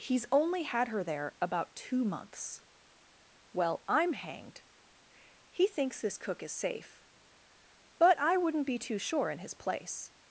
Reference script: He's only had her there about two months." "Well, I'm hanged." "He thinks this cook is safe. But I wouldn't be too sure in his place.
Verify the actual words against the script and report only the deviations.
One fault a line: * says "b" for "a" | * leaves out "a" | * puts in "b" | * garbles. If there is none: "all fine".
all fine